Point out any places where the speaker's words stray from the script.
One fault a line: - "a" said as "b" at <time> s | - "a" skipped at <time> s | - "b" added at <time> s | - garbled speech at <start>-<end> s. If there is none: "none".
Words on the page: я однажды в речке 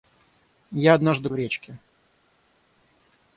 none